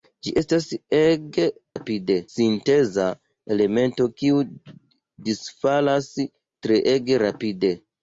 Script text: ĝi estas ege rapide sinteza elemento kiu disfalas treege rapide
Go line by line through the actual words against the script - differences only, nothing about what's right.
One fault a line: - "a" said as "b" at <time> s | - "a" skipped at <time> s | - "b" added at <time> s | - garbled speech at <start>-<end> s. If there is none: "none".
none